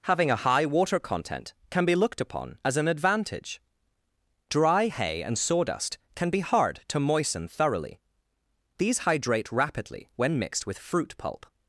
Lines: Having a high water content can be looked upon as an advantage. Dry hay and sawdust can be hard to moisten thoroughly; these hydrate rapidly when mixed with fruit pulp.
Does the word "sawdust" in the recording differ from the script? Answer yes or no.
no